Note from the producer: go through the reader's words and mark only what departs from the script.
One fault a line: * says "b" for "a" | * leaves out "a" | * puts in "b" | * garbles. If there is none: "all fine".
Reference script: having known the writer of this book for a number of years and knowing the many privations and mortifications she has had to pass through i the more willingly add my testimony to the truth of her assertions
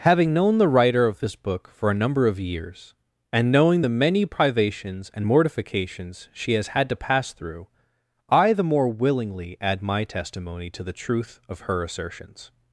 all fine